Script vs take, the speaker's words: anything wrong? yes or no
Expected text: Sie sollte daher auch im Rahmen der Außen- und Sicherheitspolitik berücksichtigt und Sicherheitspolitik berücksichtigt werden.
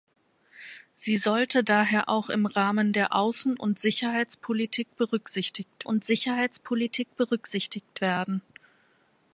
no